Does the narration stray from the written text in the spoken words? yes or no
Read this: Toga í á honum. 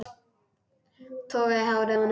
yes